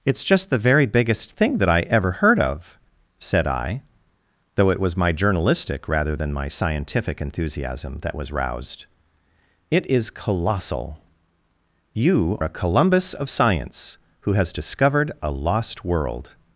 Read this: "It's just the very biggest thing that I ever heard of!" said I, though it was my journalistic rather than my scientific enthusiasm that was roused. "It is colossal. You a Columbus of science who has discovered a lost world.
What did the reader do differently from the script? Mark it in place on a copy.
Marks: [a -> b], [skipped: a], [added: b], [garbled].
"It's just the very biggest thing that I ever heard of!" said I, though it was my journalistic rather than my scientific enthusiasm that was roused. "It is colossal. You a Columbus of science who has discovered a lost world.